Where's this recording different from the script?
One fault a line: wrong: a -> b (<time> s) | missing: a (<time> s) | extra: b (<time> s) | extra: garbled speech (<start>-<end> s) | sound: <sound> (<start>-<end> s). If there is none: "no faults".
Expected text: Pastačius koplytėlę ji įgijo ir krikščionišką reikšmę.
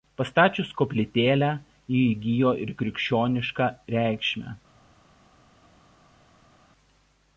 no faults